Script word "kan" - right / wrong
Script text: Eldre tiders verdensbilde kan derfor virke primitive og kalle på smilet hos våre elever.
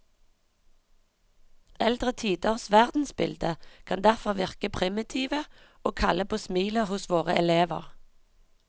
right